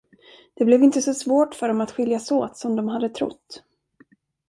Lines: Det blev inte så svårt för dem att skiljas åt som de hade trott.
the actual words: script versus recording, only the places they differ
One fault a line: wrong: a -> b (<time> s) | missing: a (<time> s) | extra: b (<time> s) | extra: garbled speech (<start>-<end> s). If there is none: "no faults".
no faults